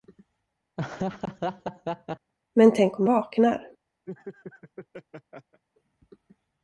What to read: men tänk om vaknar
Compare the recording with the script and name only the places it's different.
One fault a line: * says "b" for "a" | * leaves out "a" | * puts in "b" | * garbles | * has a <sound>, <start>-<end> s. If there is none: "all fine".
* has a laugh, 0.8-2.3 s
* has a laugh, 4.1-5.6 s